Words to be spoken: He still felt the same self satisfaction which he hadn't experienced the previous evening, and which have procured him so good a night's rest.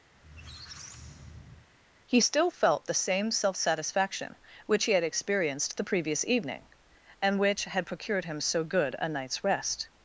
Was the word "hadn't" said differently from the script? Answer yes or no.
yes